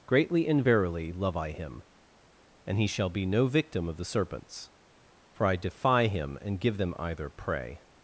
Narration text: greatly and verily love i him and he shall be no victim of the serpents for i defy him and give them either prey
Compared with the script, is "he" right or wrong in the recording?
right